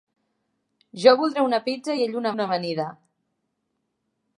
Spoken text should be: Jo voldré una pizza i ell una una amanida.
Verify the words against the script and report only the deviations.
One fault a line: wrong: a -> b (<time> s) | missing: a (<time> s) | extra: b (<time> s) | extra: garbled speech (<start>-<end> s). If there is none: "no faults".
no faults